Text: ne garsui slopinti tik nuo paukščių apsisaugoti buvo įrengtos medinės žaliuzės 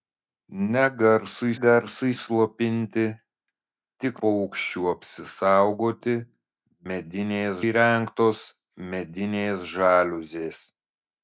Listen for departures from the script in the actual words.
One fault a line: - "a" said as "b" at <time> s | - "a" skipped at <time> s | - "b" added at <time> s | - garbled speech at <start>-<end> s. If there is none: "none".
- "garsui" added at 1.6 s
- "nuo" skipped at 4.1 s
- "buvo" said as "medinės" at 6.9 s